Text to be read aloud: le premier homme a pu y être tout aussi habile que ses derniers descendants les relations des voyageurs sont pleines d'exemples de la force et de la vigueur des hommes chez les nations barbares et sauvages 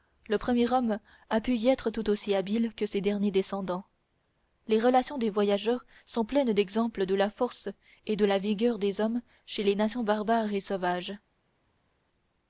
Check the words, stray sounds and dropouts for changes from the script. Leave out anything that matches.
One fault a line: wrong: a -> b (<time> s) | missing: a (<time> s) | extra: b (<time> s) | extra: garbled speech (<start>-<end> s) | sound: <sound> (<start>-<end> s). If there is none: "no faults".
no faults